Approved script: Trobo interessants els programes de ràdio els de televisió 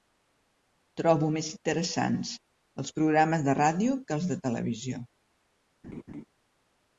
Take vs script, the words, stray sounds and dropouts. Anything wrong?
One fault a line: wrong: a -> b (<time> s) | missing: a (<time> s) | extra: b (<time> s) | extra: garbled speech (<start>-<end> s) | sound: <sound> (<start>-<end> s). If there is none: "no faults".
extra: més (1.4 s)
extra: que (4.1 s)
sound: laugh (5.8-6.2 s)